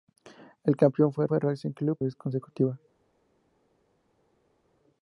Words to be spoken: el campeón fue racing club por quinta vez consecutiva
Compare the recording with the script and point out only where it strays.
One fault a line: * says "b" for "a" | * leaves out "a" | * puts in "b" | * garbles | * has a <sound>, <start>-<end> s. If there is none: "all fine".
* puts in "fue"
* leaves out "por quinta"